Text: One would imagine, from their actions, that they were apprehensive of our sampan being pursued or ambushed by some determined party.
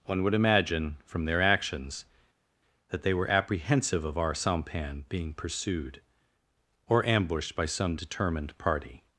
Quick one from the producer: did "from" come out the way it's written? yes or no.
yes